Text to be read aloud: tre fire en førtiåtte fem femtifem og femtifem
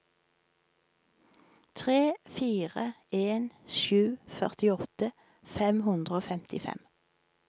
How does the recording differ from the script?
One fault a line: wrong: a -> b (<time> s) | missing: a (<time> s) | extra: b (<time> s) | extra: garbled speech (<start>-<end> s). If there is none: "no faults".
extra: sju (3.8 s)
wrong: femtifem -> hundre (5.9 s)